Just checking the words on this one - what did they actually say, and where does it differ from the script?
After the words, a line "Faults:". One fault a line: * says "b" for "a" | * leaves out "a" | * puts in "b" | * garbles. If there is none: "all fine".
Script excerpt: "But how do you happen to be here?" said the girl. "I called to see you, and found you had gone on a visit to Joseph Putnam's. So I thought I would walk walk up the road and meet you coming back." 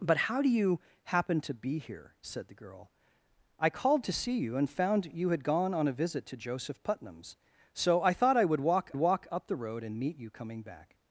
"But how do you happen to be here?" said the girl. "I called to see you, and found you had gone on a visit to Joseph Putnam's. So I thought I would walk walk up the road and meet you coming back."
Faults:
all fine